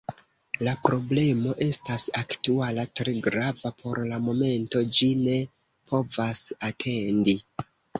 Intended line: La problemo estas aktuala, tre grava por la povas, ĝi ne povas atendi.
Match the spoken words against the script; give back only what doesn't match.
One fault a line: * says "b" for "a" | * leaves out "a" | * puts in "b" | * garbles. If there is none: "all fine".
* says "momento" for "povas"